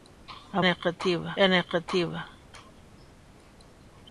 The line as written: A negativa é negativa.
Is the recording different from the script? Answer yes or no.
no